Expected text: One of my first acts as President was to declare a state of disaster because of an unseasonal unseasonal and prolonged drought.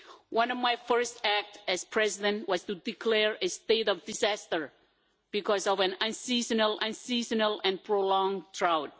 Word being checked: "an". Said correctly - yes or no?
yes